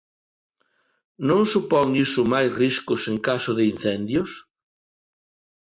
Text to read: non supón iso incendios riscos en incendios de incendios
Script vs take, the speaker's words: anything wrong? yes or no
yes